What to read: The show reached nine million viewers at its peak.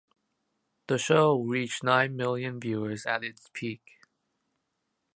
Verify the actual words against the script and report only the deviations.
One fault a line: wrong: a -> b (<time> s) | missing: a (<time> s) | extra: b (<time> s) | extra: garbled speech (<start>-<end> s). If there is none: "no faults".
no faults